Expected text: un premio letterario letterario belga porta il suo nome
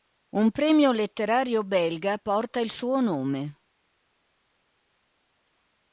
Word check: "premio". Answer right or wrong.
right